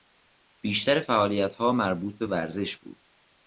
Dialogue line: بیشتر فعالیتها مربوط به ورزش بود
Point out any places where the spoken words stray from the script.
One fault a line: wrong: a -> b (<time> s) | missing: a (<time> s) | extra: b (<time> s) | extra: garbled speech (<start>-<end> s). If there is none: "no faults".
no faults